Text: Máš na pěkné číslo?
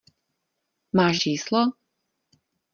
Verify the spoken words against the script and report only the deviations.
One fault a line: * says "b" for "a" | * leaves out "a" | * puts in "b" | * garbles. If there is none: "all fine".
* leaves out "na pěkné"